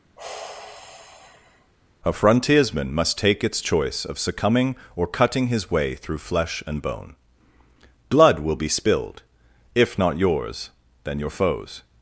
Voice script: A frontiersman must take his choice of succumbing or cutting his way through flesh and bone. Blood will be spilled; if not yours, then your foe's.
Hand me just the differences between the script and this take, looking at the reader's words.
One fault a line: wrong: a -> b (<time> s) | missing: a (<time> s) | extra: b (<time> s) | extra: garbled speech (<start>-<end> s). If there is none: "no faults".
wrong: his -> its (3.4 s)